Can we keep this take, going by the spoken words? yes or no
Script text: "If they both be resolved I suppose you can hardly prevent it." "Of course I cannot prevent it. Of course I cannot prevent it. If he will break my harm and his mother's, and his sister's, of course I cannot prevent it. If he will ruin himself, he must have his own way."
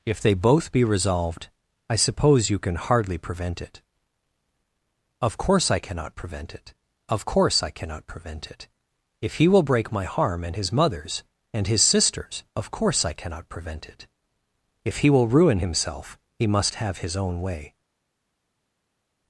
yes